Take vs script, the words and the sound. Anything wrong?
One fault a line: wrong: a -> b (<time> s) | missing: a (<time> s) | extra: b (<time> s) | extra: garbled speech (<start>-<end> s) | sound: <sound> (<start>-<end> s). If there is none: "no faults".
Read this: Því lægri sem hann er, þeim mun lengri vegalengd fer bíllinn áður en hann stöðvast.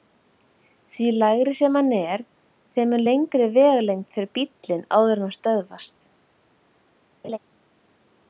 sound: laugh (7.2-7.4 s)